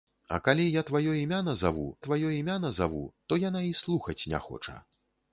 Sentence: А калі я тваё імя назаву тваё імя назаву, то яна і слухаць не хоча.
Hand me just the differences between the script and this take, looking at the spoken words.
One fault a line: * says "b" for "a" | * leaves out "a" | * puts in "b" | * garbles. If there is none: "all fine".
all fine